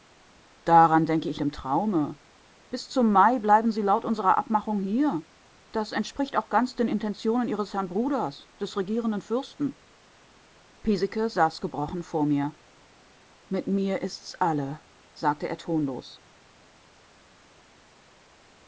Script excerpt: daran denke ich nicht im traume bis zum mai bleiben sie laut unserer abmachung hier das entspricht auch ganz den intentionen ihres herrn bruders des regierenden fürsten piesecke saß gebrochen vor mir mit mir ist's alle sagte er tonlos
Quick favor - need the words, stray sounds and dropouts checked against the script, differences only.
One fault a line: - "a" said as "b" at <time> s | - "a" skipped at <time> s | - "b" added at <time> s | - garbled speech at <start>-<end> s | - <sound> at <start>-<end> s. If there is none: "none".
- "nicht" skipped at 1.4 s